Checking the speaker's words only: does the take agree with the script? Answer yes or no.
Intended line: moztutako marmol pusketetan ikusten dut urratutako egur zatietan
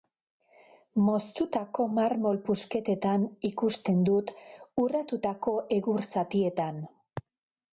yes